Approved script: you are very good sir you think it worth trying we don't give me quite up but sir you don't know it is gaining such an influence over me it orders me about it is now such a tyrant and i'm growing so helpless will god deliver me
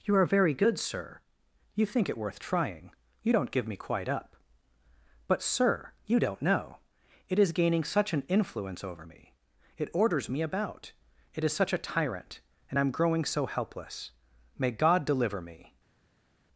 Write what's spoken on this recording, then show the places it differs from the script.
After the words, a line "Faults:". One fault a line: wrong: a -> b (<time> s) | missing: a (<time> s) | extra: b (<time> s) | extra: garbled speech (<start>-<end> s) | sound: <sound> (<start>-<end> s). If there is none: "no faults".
you are very good sir you think it worth trying you don't give me quite up but sir you don't know it is gaining such an influence over me it orders me about it is such a tyrant and i'm growing so helpless may god deliver me
Faults:
wrong: we -> you (3.2 s)
missing: now (11.5 s)
wrong: will -> may (14.6 s)